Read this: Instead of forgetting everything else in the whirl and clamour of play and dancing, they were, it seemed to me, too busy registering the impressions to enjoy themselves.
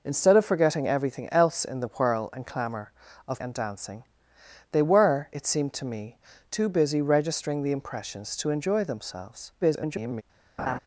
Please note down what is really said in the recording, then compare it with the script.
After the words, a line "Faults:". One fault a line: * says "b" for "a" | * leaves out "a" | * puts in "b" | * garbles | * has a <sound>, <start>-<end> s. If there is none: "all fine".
Instead of forgetting everything else in the whirl and clamour of and dancing, they were, it seemed to me, too busy registering the impressions to enjoy themselves. [garbled]
Faults:
* leaves out "play"
* garbles
* has a laugh, 10.6-10.8 s